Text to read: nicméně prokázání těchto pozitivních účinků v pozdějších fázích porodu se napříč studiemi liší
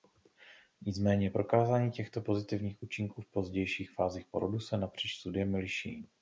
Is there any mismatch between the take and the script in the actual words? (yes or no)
no